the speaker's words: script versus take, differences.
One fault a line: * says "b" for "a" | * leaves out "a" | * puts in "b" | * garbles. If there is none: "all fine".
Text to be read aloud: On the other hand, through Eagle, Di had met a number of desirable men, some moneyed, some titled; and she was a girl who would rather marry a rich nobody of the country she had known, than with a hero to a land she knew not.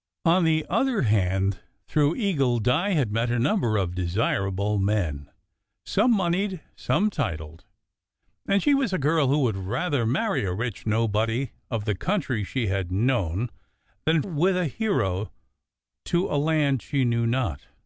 all fine